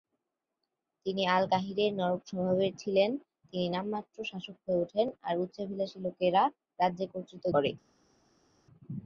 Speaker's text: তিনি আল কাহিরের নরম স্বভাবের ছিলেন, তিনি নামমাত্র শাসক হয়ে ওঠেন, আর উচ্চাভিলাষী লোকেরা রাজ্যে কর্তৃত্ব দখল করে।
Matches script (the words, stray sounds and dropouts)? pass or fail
fail